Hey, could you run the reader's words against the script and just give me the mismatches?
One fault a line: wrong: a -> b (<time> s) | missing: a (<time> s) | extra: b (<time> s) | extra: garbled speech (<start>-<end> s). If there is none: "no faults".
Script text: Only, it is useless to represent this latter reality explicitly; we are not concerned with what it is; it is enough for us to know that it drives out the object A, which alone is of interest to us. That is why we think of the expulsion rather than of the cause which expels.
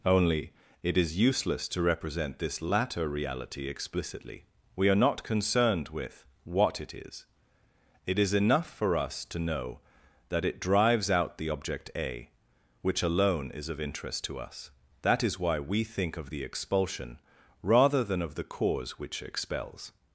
no faults